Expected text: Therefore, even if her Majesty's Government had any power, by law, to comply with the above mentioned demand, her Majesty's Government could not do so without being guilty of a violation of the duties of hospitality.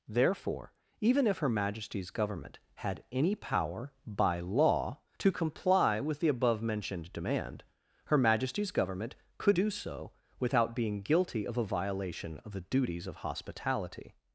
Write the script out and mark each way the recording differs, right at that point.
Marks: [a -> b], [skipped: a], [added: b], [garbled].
Therefore, even if her Majesty's Government had any power, by law, to comply with the above mentioned demand, her Majesty's Government could [skipped: not] do so without being guilty of a violation of the duties of hospitality.